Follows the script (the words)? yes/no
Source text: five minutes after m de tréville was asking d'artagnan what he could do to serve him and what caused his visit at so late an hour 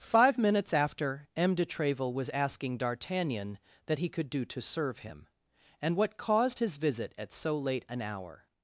no